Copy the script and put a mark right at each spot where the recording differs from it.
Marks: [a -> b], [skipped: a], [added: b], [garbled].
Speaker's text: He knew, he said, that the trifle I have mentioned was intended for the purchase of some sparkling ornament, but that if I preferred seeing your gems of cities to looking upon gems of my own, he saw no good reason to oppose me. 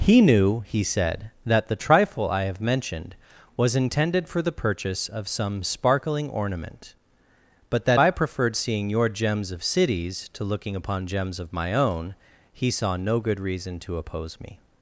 He knew, he said, that the trifle I have mentioned was intended for the purchase of some sparkling ornament, but that [skipped: if] I preferred seeing your gems of cities to looking upon gems of my own, he saw no good reason to oppose me.